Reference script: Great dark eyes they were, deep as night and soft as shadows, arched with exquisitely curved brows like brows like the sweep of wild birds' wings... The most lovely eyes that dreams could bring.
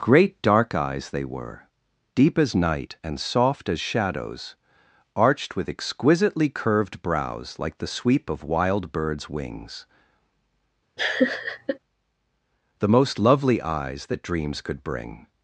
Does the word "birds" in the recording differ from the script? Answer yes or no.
no